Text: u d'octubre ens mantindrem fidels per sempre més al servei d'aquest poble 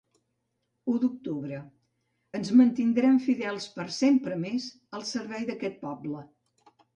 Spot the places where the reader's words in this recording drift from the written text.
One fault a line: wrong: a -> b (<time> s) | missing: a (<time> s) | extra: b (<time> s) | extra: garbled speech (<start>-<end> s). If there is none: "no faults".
no faults